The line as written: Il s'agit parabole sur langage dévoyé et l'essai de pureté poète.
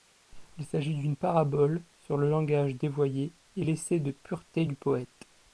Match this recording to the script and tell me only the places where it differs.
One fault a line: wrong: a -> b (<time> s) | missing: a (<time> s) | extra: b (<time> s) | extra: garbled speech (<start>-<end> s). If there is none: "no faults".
extra: d'une (0.9 s)
extra: le (2.2 s)
extra: du (4.6 s)